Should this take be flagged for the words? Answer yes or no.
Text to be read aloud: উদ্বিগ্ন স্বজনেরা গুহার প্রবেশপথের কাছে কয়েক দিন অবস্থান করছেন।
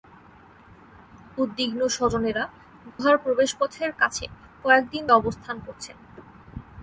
no